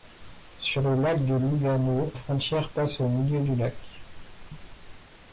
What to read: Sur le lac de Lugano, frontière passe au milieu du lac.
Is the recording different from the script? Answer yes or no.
no